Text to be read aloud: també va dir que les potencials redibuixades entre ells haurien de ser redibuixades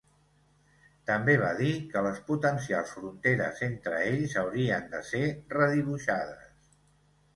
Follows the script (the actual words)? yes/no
no